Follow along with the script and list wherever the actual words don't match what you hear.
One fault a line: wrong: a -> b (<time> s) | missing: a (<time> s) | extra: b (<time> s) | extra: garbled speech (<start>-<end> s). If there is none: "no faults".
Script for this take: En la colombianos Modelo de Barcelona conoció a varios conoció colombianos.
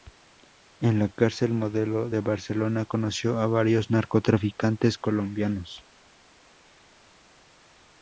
wrong: colombianos -> cárcel (1.1 s)
wrong: conoció -> narcotraficantes (3.9 s)